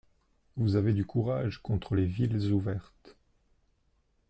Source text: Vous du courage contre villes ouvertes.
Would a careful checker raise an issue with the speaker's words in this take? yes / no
yes